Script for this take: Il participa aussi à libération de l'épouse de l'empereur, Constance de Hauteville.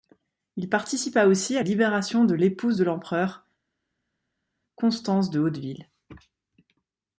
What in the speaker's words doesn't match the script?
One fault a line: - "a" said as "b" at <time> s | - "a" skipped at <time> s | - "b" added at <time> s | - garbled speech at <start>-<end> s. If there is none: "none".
none